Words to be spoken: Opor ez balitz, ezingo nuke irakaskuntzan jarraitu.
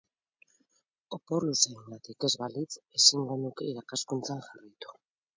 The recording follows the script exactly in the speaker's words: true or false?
false